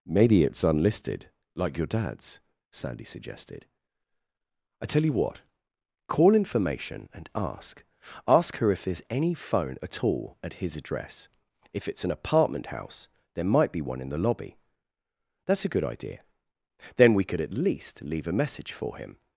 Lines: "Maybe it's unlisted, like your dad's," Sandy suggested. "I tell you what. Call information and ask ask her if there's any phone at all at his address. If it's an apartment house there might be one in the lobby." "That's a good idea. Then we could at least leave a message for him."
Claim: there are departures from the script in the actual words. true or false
false